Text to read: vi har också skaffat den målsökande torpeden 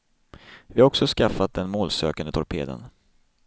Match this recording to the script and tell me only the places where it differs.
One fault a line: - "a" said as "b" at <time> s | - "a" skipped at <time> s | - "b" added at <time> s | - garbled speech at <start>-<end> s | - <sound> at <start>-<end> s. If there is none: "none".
none